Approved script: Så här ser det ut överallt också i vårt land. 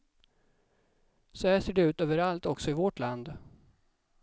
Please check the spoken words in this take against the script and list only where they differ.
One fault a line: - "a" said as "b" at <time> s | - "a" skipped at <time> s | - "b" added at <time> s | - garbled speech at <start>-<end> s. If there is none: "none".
none